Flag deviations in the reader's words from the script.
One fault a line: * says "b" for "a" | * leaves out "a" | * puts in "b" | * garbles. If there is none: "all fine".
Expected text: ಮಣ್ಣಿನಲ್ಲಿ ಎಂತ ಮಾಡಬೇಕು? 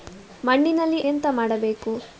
all fine